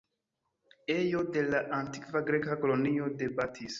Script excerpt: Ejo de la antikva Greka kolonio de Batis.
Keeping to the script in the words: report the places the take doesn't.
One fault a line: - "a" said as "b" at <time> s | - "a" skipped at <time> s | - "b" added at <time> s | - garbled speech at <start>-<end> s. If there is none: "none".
none